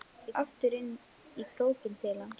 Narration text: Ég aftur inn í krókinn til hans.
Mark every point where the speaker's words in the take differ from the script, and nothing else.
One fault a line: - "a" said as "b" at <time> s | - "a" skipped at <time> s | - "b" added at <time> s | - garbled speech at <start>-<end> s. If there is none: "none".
none